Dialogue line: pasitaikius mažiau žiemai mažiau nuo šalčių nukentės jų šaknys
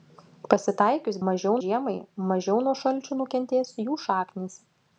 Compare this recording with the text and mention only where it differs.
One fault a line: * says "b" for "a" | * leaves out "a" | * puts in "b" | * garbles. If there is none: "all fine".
all fine